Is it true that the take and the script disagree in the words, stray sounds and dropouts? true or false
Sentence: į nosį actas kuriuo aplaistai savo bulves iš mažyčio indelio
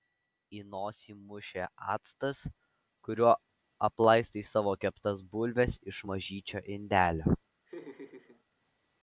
true